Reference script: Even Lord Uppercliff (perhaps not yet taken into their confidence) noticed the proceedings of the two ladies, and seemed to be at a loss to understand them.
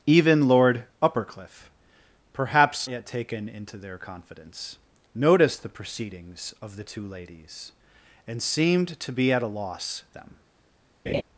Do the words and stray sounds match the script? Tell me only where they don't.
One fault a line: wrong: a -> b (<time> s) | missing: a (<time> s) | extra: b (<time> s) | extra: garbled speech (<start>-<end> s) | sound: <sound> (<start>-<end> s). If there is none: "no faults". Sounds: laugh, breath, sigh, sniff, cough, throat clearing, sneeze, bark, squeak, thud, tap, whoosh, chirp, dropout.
missing: not (2.9 s)
missing: to understand (10.0 s)
sound: laugh (11.1-11.2 s)